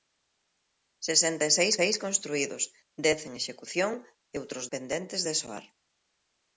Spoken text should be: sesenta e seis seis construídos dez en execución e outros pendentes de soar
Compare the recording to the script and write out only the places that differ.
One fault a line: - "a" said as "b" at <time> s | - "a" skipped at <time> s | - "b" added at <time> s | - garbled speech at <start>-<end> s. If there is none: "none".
none